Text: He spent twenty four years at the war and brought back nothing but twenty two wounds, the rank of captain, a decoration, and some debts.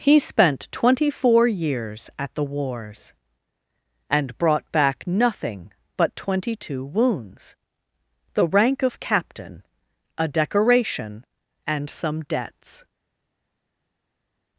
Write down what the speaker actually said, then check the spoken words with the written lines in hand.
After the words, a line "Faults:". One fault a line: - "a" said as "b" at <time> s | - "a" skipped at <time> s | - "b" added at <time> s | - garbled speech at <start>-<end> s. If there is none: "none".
He spent twenty four years at the wars and brought back nothing but twenty two wounds, the rank of captain, a decoration, and some debts.
Faults:
- "war" said as "wars" at 2.4 s